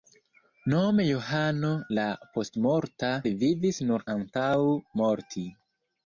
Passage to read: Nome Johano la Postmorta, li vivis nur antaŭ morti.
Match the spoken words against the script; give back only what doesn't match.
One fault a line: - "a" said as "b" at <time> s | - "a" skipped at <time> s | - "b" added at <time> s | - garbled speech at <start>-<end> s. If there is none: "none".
none